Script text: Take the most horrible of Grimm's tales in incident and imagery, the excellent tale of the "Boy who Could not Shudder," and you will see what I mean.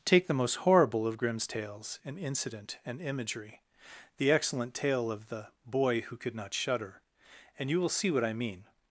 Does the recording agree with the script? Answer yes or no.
yes